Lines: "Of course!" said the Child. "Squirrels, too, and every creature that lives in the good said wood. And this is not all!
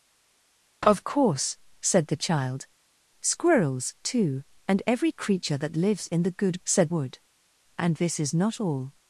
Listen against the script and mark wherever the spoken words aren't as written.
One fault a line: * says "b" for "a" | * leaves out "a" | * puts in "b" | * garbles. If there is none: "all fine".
all fine